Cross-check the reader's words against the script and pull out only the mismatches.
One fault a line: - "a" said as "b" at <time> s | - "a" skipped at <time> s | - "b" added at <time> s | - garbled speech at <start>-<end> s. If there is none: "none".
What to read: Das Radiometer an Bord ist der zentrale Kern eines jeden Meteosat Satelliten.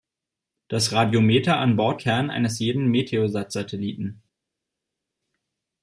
- "ist der zentrale" skipped at 2.0 s